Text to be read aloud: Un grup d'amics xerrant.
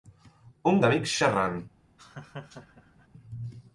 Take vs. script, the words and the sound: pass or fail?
fail